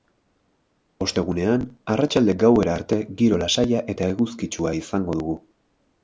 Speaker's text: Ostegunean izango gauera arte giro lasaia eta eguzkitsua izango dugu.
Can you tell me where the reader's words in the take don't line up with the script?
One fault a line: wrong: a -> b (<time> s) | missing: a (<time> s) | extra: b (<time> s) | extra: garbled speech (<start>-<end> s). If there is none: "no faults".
wrong: izango -> arratsalde (1.9 s)